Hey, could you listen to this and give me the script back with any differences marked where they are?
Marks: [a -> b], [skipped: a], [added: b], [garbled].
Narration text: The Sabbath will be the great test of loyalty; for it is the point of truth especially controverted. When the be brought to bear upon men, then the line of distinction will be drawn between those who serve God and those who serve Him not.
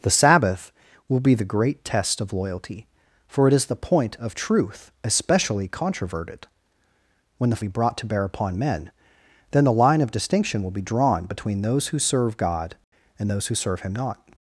The Sabbath will be the great test of loyalty; for it is the point of truth especially controverted. When the be brought to bear upon men, then the line of distinction will be drawn between those who serve God and those who serve Him not.